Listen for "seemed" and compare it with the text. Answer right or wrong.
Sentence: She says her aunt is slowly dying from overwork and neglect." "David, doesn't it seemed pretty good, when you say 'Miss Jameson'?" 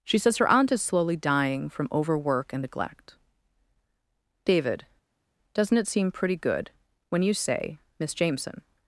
wrong